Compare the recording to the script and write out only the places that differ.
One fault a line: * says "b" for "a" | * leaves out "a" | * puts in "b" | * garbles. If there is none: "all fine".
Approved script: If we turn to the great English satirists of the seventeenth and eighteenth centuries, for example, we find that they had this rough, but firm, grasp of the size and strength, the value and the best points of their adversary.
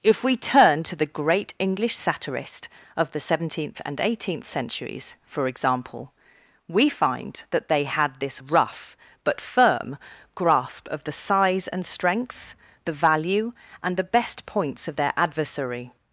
* says "satirist" for "satirists"